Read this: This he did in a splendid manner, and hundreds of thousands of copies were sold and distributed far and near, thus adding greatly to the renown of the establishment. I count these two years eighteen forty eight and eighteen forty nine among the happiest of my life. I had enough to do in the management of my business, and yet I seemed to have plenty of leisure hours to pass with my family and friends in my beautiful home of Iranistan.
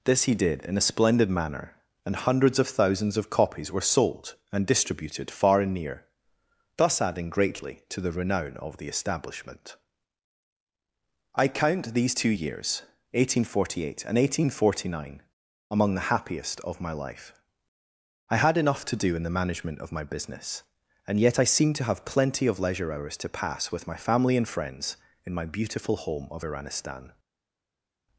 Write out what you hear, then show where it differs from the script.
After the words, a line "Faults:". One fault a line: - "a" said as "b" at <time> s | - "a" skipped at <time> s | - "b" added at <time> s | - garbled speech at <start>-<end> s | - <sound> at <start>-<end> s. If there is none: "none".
This he did in a splendid manner, and hundreds of thousands of copies were sold and distributed far and near, thus adding greatly to the renown of the establishment. I count these two years eighteen forty eight and eighteen forty nine among the happiest of my life. I had enough to do in the management of my business, and yet I seemed to have plenty of leisure hours to pass with my family and friends in my beautiful home of Iranistan.
Faults:
none